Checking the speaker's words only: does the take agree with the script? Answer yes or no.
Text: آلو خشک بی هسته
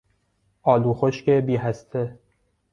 yes